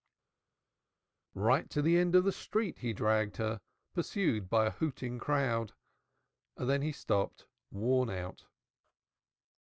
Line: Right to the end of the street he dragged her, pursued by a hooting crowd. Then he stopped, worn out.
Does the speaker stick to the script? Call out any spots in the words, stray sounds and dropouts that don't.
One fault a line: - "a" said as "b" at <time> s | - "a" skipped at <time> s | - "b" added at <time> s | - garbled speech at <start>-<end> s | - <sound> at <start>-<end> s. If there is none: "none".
none